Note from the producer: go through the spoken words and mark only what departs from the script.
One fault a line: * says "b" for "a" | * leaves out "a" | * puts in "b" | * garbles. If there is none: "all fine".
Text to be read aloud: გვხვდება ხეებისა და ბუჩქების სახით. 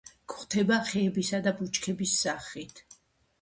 all fine